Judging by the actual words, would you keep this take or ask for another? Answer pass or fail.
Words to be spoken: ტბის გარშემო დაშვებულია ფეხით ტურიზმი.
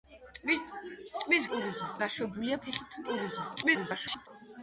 fail